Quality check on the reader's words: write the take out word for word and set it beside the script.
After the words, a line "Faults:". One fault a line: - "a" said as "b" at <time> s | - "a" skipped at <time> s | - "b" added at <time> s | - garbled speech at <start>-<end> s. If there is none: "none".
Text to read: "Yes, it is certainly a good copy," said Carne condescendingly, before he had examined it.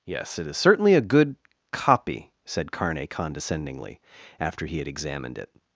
"Yes, it is certainly a good copy," said Carne condescendingly, after he had examined it.
Faults:
- "before" said as "after" at 4.4 s